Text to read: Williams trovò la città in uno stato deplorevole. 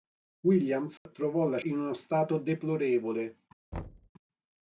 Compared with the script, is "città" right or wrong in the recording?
wrong